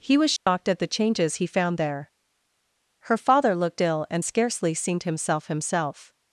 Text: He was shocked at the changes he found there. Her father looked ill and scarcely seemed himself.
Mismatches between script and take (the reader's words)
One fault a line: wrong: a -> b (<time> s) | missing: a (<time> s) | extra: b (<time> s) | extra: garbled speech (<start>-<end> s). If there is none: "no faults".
extra: himself (5.5 s)